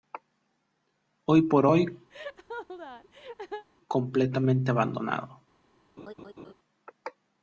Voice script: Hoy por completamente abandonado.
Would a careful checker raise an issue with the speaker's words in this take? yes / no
yes